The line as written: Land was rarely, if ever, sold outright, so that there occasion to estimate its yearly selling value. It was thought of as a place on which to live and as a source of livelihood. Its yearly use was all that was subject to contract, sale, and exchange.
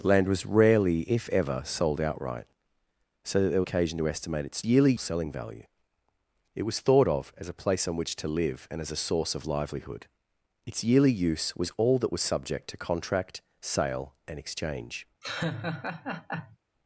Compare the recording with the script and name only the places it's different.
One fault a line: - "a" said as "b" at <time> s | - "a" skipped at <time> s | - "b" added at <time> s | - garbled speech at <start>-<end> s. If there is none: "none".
none